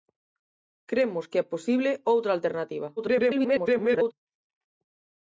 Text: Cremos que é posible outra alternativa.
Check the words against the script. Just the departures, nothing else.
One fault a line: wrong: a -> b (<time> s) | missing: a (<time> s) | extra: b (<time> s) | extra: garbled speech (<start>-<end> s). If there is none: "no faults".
extra: garbled speech (3.0-4.1 s)